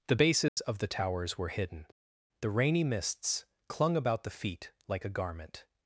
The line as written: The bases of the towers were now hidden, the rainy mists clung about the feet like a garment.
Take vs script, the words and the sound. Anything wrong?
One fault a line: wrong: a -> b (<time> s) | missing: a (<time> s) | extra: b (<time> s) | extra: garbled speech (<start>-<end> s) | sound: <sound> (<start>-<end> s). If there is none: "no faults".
sound: dropout (0.5-0.6 s)
missing: now (1.5 s)